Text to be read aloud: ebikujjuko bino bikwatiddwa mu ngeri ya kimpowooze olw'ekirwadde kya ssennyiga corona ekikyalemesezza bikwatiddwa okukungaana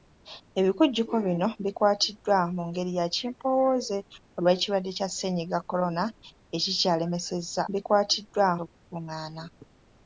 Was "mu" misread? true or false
false